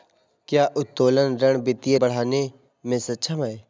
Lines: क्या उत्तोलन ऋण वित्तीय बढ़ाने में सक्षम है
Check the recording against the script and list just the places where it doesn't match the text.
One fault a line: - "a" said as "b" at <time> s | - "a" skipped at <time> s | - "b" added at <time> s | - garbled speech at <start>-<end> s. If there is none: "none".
none